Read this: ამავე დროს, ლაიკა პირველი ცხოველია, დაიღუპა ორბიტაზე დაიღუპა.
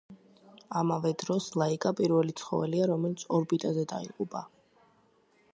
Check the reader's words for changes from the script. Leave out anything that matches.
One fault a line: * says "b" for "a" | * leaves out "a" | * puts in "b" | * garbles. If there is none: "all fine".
* says "რომელიც" for "დაიღუპა"